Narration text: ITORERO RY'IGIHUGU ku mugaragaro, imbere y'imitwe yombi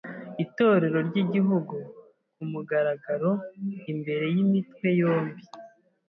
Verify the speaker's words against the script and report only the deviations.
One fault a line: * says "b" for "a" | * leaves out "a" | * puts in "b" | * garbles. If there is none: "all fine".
all fine